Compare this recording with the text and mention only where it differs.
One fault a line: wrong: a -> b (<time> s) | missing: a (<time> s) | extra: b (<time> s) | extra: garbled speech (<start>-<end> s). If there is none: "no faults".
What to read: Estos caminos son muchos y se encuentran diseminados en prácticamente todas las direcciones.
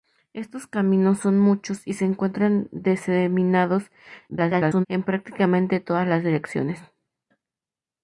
extra: garbled speech (4.3-4.9 s)